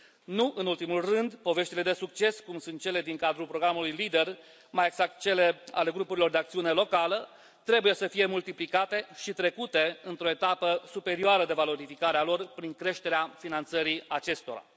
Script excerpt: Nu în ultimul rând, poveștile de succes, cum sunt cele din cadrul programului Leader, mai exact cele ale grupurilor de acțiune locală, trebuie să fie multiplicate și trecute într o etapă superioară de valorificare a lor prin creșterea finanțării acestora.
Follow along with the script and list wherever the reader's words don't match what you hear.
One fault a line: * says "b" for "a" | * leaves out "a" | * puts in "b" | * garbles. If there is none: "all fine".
all fine